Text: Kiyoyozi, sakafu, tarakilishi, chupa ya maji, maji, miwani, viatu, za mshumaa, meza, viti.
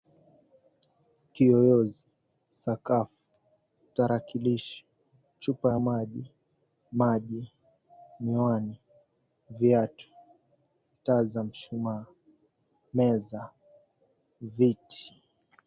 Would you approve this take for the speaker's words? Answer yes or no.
no